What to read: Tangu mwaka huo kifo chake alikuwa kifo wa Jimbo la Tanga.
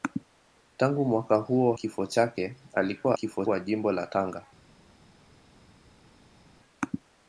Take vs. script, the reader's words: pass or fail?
pass